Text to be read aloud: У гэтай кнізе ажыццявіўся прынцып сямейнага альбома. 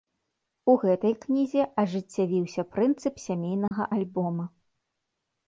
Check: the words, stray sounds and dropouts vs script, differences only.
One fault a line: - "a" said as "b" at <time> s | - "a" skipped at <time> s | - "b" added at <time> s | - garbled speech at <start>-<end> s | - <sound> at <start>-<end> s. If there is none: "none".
- dropout at 3.7-3.7 s